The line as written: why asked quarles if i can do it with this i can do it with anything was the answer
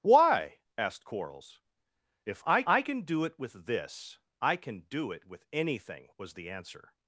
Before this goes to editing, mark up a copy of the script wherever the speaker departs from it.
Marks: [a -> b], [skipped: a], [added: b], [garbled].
why asked quarles if i [added: i] can do it with this i can do it with anything was the answer